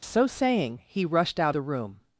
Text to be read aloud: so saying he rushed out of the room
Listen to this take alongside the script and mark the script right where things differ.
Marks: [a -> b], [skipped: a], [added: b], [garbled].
so saying he rushed out [skipped: of] the room